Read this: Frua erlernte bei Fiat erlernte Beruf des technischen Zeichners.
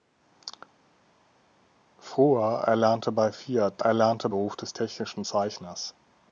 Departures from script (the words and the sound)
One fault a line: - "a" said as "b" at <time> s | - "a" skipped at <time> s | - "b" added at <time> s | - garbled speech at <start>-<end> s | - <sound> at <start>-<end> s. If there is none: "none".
none